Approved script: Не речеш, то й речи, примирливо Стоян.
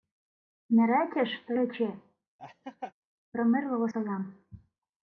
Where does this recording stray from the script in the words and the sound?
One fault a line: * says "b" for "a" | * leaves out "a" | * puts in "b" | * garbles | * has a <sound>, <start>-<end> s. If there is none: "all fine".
* has a laugh, 2.4-2.9 s